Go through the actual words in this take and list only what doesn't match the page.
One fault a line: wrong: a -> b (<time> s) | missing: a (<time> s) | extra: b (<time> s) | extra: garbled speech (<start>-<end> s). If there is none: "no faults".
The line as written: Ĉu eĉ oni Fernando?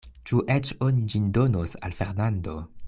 extra: ĝin donos al (1.1 s)